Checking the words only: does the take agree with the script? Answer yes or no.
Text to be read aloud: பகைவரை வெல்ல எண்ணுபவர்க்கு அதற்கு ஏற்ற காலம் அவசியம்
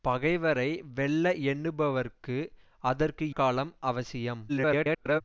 no